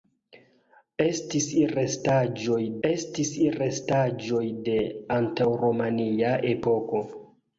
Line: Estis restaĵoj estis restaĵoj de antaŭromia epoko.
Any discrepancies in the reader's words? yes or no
no